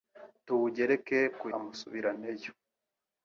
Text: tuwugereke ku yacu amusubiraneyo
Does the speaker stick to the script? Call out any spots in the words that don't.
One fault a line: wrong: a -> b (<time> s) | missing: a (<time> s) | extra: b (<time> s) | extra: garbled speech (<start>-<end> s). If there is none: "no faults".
missing: yacu (1.5 s)